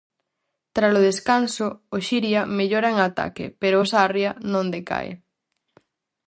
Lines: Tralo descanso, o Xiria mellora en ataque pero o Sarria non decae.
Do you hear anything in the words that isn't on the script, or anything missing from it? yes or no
no